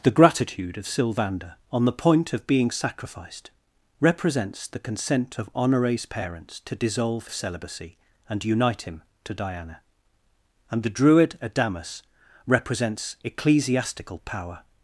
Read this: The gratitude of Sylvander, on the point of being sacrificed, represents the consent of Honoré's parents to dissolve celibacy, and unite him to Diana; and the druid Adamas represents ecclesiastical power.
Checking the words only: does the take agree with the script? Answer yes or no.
yes